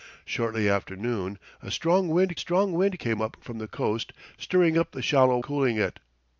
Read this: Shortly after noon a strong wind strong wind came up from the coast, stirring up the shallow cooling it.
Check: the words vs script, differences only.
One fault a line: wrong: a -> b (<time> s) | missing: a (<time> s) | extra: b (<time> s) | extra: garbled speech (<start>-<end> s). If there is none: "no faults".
no faults